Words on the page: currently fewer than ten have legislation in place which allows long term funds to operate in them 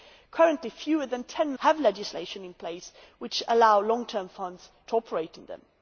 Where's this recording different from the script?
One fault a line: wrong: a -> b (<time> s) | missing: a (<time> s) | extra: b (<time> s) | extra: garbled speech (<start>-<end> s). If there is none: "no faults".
no faults